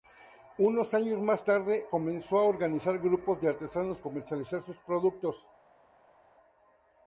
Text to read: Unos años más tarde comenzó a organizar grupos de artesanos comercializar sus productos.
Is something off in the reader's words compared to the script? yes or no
no